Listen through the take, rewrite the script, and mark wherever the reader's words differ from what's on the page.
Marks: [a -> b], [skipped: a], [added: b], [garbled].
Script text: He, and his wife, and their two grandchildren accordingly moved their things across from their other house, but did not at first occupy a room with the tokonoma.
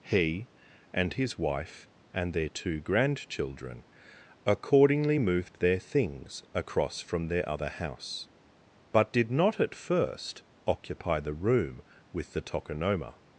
He, and his wife, and their two grandchildren accordingly moved their things across from their other house, but did not at first occupy [a -> the] room with the tokonoma.